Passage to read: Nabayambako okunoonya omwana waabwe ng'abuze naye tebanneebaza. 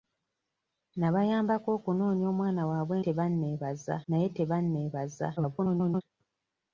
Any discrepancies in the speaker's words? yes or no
yes